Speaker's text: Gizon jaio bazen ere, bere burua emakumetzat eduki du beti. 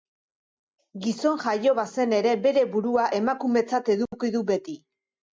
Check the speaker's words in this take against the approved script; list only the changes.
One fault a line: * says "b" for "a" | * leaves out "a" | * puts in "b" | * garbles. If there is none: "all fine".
all fine